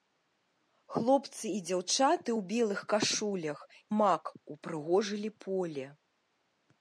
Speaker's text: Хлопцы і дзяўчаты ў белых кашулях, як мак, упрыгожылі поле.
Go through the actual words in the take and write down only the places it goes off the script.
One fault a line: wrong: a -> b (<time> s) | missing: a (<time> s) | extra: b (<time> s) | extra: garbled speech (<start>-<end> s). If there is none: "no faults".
missing: як (3.6 s)